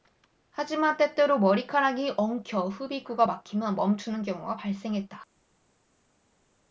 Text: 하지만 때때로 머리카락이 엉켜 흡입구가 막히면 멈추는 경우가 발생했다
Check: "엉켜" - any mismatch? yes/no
no